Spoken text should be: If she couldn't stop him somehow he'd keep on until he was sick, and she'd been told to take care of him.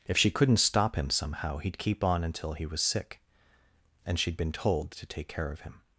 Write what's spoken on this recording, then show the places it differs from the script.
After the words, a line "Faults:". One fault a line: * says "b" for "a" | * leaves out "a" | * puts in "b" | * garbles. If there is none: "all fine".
If she couldn't stop him somehow he'd keep on until he was sick, and she'd been told to take care of him.
Faults:
all fine